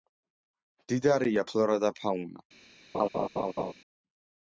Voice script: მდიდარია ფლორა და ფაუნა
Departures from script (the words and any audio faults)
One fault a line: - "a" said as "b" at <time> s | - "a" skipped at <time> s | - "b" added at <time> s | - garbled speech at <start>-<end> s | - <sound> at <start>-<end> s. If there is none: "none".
- laugh at 2.9-3.7 s